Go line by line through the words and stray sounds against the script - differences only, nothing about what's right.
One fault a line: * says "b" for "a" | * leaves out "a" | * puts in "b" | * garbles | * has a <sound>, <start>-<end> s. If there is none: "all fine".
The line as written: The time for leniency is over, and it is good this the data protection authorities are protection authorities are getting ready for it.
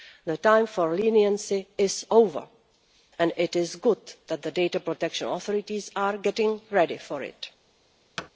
* says "that" for "this"
* leaves out "protection authorities are"
* has a thud, 8.2-8.3 s